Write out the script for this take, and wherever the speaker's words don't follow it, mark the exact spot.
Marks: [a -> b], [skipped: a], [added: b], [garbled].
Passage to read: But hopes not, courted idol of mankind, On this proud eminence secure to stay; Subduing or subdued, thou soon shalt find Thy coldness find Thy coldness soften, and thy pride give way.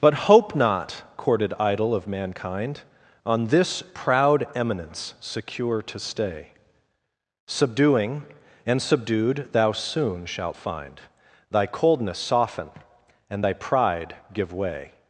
But [hopes -> hope] not, courted idol of mankind, On this proud eminence secure to stay; Subduing [or -> and] subdued, thou soon shalt find Thy coldness [skipped: find Thy coldness] soften, and thy pride give way.